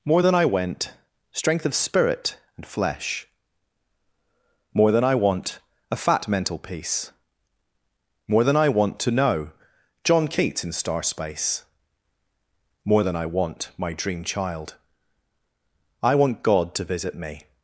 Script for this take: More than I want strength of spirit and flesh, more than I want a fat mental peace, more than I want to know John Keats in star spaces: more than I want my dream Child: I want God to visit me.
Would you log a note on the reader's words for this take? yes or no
yes